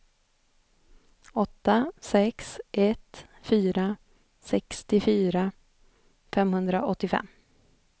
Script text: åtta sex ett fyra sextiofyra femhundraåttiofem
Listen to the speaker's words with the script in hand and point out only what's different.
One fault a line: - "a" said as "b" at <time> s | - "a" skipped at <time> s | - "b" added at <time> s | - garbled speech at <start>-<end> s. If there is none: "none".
none